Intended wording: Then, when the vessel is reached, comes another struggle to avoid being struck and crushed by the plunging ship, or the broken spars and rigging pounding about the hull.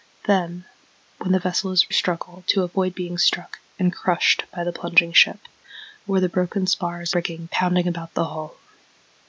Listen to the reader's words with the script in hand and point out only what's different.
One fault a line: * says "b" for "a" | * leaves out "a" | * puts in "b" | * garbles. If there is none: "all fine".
* leaves out "reached comes another"
* leaves out "and"